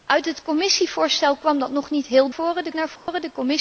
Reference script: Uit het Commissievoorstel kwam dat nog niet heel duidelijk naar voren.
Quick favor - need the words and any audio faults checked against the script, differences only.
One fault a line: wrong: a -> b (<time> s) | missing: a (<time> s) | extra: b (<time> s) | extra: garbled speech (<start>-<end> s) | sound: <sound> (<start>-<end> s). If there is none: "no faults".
wrong: duidelijk -> voren (2.3 s)
sound: dropout (3.0-3.1 s)